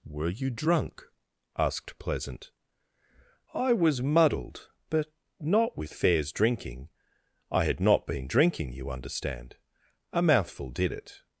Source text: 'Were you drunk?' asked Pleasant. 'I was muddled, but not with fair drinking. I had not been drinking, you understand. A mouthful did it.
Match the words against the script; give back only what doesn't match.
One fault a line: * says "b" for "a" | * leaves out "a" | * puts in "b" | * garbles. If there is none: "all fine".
* says "fairs" for "fair"